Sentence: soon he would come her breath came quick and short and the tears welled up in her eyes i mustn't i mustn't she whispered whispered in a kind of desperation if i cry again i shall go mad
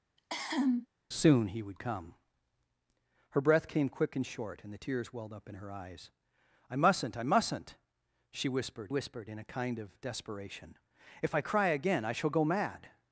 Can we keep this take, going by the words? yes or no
yes